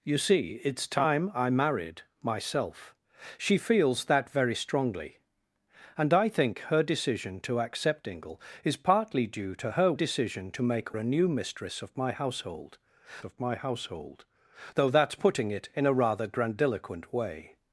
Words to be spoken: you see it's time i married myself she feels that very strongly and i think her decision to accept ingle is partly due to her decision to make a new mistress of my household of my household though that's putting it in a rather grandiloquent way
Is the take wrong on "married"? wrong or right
right